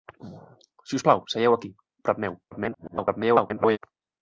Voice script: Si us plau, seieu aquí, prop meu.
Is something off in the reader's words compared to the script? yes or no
yes